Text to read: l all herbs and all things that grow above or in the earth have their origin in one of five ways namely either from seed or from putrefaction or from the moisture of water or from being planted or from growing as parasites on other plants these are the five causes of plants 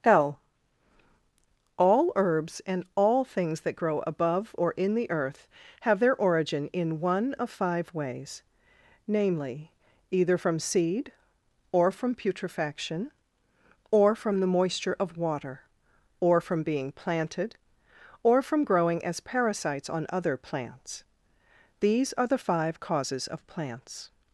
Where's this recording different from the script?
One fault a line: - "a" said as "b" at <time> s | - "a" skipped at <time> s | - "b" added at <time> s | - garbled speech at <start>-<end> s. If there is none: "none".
none